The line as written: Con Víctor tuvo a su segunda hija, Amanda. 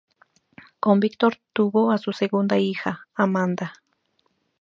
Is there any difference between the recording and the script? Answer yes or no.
no